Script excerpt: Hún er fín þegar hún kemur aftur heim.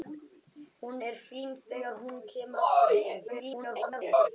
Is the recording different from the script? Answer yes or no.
yes